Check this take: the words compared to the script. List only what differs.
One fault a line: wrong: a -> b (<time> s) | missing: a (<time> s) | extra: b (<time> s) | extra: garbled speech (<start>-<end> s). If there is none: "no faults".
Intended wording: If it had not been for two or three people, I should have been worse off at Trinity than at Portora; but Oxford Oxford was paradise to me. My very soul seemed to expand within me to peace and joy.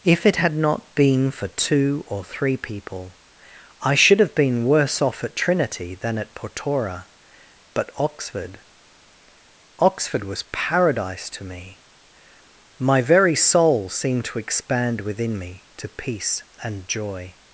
no faults